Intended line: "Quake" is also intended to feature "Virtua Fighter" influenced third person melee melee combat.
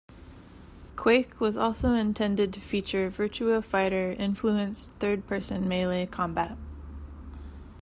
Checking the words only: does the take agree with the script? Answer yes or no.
no